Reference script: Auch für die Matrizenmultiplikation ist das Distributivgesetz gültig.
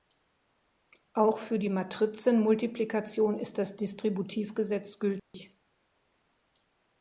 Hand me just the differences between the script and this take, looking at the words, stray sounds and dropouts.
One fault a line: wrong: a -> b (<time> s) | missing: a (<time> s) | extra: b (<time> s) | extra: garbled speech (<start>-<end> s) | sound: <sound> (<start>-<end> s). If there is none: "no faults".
sound: dropout (5.2-5.3 s)